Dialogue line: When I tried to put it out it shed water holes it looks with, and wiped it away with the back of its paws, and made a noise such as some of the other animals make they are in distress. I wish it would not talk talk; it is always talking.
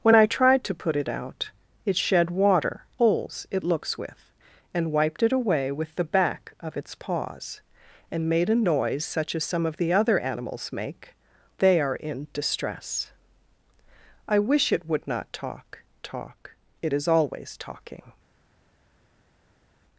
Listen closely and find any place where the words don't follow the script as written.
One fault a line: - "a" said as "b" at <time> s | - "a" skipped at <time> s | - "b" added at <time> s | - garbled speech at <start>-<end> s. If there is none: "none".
none